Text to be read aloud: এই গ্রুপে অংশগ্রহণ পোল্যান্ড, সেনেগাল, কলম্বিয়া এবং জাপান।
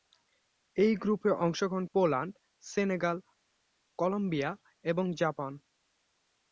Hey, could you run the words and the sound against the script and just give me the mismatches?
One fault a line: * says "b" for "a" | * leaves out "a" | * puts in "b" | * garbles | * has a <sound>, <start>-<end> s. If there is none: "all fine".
all fine